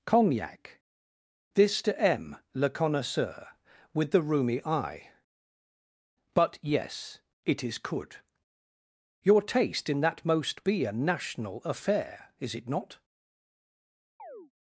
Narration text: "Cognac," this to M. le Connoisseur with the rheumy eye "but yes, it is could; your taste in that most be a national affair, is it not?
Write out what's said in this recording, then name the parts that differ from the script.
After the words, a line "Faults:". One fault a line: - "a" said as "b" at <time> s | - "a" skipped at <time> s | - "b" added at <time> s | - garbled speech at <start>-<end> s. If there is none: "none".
"Cognac," this to M. le Connoisseur with the rheumy eye "but yes, it is could; your taste in that most be a national affair, is it not?
Faults:
none